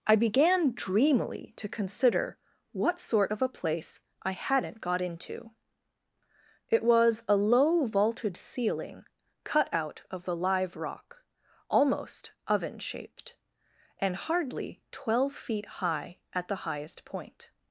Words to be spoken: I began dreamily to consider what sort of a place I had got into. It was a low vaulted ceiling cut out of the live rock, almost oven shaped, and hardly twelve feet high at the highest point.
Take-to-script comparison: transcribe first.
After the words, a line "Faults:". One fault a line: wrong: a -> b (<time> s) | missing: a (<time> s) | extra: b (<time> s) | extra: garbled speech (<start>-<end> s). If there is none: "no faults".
I began dreamily to consider what sort of a place I hadn't got into. It was a low vaulted ceiling cut out of the live rock, almost oven shaped, and hardly twelve feet high at the highest point.
Faults:
wrong: had -> hadn't (4.3 s)